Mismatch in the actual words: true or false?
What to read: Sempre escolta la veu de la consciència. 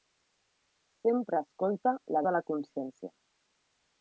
true